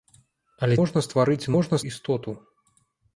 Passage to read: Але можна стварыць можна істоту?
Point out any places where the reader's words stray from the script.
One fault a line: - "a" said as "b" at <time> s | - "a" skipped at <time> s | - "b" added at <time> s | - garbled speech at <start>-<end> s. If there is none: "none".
none